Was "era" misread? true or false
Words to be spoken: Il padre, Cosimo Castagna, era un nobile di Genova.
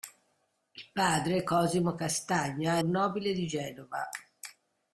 true